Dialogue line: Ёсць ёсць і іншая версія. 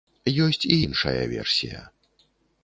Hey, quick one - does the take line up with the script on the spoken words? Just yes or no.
no